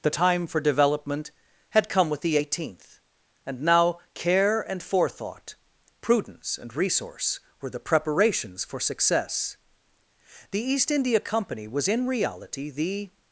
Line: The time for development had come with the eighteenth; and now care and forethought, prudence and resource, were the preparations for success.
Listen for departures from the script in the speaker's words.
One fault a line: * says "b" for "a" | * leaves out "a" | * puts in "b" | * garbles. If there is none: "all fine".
* puts in "The East India Company was in reality the"